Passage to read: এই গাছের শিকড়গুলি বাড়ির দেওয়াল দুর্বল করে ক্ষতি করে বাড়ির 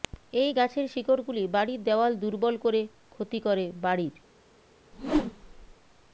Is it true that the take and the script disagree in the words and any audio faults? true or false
true